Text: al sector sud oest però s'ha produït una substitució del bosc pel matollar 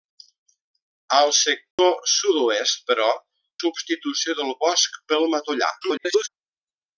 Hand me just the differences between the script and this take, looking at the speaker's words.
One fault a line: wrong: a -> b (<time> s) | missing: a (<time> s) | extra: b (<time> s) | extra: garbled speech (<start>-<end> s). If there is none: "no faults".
missing: s'ha produït una (3.1 s)
extra: garbled speech (5.8-6.3 s)